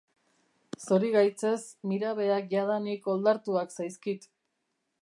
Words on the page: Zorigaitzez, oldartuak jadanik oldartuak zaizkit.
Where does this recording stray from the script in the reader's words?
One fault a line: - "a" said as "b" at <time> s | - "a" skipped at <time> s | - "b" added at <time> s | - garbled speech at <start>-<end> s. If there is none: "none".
- "oldartuak" said as "mirabeak" at 1.9 s